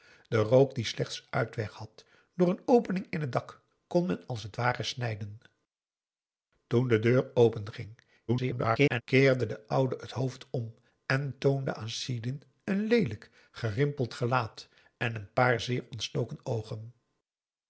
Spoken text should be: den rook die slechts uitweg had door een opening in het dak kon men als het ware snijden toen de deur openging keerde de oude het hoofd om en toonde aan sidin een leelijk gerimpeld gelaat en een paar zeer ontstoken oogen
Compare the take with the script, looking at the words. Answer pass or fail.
fail